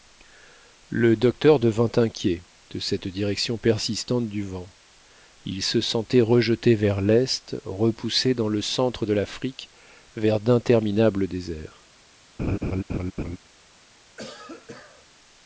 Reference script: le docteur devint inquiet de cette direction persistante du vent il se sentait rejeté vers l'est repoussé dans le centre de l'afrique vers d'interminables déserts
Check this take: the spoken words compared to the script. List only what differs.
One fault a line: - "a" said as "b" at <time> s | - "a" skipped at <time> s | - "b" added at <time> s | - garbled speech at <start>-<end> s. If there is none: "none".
none